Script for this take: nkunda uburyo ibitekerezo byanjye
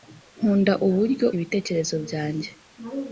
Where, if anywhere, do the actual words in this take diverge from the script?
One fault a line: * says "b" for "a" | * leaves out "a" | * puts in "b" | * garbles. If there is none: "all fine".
all fine